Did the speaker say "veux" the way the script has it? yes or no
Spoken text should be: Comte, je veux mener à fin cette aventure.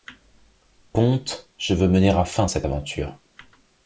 yes